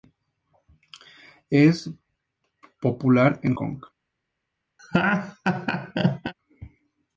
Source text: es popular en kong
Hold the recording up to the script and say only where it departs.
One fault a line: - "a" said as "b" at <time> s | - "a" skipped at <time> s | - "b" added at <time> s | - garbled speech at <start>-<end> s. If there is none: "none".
none